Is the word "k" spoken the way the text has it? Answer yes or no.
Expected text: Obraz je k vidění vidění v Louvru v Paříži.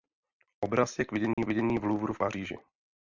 yes